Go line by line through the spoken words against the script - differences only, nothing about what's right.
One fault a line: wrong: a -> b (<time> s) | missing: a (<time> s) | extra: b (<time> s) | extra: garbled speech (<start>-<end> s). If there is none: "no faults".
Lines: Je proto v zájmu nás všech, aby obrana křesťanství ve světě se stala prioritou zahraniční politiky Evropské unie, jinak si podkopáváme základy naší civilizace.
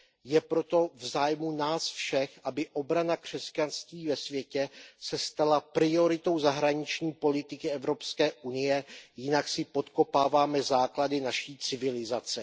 no faults